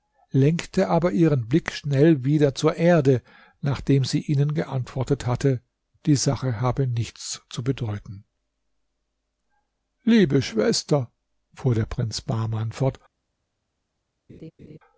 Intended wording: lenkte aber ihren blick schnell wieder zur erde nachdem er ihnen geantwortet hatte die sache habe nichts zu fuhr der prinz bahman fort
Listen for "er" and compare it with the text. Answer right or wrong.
wrong